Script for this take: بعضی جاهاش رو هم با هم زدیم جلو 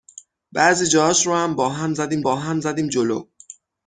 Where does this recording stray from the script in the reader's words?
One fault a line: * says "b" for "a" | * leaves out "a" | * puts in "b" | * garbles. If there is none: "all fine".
* puts in "با هم زدیم"